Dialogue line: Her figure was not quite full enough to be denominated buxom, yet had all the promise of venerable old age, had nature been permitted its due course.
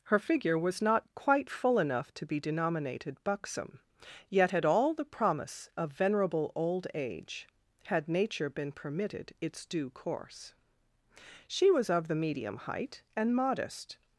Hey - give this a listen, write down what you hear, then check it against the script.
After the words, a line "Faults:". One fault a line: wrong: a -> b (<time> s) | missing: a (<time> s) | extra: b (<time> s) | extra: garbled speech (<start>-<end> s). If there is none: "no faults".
Her figure was not quite full enough to be denominated buxom, yet had all the promise of venerable old age, had nature been permitted its due course. She was of the medium height, and modest
Faults:
extra: She was of the medium height and modest (11.5 s)